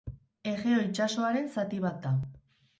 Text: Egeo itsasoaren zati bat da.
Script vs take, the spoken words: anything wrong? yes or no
no